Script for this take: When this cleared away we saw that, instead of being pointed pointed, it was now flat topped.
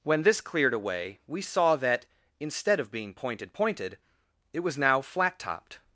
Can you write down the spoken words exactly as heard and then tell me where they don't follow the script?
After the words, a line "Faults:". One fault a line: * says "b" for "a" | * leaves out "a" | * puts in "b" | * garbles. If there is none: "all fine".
When this cleared away we saw that, instead of being pointed pointed, it was now flat topped.
Faults:
all fine